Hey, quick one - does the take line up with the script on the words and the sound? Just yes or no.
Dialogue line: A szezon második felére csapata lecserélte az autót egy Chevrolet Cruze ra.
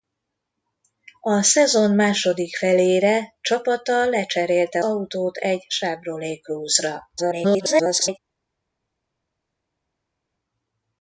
no